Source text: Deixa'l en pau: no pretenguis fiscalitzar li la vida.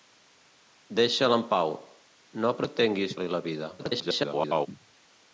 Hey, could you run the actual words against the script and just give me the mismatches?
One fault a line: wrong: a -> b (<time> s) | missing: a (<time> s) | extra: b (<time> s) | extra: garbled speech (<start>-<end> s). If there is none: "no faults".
missing: fiscalitzar (3.1 s)
extra: garbled speech (3.8-4.7 s)